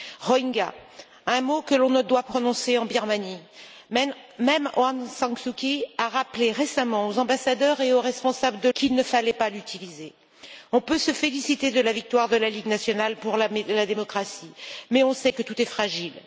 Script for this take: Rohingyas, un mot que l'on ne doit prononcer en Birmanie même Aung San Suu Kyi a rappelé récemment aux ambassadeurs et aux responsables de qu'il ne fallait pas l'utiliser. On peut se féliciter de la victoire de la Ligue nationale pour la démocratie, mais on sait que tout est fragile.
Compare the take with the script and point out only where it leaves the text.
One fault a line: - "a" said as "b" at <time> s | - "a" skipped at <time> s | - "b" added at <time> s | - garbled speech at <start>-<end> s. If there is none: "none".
none